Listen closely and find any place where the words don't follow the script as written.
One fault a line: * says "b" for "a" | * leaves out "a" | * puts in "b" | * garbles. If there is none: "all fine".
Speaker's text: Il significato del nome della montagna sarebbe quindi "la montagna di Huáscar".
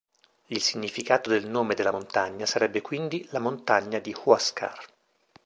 all fine